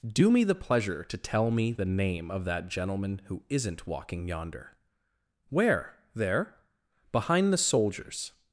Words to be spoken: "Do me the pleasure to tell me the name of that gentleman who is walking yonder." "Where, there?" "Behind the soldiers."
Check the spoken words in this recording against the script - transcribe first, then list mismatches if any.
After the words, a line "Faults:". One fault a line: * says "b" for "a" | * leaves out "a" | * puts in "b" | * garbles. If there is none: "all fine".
"Do me the pleasure to tell me the name of that gentleman who isn't walking yonder." "Where, there?" "Behind the soldiers."
Faults:
* says "isn't" for "is"